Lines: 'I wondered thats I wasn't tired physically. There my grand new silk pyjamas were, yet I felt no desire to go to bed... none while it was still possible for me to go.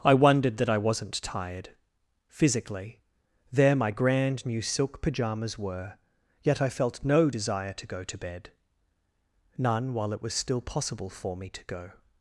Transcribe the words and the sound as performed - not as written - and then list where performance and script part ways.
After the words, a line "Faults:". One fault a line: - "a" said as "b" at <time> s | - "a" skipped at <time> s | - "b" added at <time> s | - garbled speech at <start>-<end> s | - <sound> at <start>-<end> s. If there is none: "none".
'I wondered that I wasn't tired physically. There my grand new silk pyjamas were, yet I felt no desire to go to bed... none while it was still possible for me to go.
Faults:
- "thats" said as "that" at 0.6 s